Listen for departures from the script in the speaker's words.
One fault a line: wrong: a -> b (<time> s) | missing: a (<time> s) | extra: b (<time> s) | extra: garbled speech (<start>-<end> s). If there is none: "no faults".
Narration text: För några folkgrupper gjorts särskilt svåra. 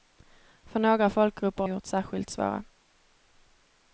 no faults